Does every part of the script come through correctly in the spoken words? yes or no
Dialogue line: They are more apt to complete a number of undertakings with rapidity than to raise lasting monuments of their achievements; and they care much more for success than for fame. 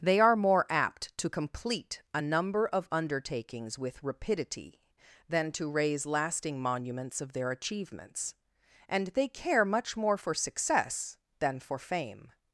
yes